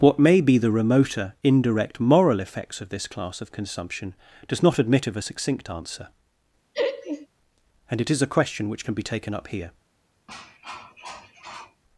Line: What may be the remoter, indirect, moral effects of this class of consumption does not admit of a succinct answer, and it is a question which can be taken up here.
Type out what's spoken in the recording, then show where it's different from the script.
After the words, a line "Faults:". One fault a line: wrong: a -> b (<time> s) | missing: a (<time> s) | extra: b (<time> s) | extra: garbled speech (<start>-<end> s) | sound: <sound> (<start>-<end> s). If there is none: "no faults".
What may be the remoter, indirect, moral effects of this class of consumption does not admit of a succinct answer, and it is a question which can be taken up here.
Faults:
sound: laugh (6.7-7.3 s)
sound: cough (10.3-11.8 s)